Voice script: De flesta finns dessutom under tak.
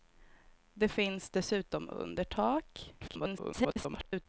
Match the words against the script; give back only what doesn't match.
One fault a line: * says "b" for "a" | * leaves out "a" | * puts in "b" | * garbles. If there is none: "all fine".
* leaves out "flesta"
* garbles